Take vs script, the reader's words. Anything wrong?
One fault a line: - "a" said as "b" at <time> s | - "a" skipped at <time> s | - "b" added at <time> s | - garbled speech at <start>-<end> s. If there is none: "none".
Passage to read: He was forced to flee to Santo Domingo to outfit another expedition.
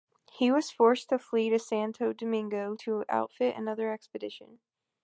none